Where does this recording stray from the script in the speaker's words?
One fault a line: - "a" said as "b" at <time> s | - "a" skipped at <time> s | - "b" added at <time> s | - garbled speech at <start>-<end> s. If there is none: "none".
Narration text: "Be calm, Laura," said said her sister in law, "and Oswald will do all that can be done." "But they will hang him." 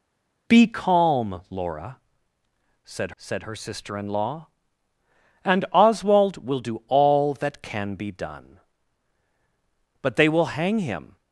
none